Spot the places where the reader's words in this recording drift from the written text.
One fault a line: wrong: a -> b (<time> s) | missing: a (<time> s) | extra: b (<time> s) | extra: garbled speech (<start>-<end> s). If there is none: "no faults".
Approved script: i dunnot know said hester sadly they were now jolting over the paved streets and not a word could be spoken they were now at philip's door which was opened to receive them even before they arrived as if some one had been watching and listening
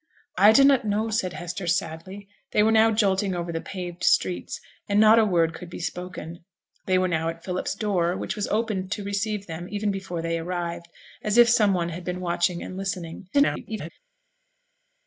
extra: garbled speech (13.3-13.9 s)